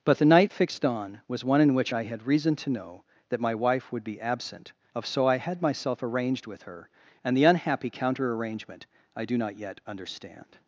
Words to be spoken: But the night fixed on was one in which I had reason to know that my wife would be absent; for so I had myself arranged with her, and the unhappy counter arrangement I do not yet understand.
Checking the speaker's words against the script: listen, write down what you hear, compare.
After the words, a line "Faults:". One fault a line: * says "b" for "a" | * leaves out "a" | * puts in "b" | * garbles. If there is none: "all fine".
But the night fixed on was one in which I had reason to know that my wife would be absent; of so I had myself arranged with her, and the unhappy counter arrangement I do not yet understand.
Faults:
* says "of" for "for"